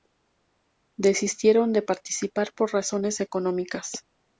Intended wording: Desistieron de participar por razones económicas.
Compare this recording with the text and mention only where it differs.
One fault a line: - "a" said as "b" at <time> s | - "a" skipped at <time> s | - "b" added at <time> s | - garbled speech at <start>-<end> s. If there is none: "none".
none